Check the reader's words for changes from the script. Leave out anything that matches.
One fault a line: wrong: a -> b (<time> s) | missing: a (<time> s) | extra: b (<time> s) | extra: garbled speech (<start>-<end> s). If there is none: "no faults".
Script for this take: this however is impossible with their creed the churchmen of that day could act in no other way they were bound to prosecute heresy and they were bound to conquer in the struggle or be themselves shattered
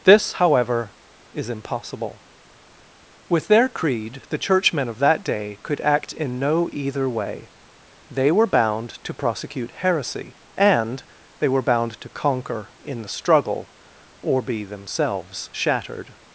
wrong: other -> either (6.7 s)